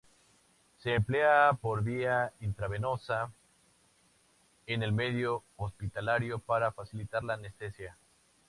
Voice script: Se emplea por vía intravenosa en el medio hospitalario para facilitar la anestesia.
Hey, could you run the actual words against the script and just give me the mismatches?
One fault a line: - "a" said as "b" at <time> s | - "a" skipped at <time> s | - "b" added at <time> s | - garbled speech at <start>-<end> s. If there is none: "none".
none